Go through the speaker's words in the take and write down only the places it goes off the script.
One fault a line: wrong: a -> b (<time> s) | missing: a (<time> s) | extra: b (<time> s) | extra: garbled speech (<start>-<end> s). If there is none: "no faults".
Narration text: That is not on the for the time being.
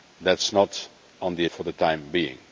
no faults